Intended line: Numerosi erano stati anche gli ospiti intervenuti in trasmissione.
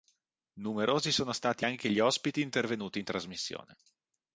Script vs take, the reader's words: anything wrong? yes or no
yes